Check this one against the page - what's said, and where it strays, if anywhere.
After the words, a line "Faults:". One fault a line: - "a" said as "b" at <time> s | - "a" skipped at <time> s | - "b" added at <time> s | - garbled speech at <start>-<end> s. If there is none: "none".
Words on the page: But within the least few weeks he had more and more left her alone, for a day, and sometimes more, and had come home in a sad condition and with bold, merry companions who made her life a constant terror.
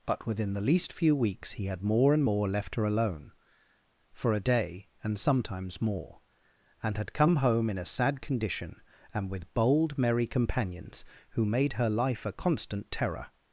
But within the least few weeks he had more and more left her alone, for a day, and sometimes more, and had come home in a sad condition and with bold, merry companions who made her life a constant terror.
Faults:
none